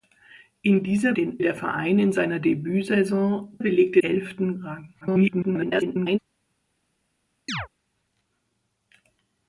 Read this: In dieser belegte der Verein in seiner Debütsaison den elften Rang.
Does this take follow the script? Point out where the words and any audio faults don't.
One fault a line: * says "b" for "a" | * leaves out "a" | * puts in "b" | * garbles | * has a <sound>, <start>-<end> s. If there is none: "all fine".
* says "den" for "belegte"
* says "belegte" for "den"
* garbles
* has a chirp, 7.5-7.7 s